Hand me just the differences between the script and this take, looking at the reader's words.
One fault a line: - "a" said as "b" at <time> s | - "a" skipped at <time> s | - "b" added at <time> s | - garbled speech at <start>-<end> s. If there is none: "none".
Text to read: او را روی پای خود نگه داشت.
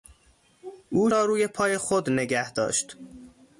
none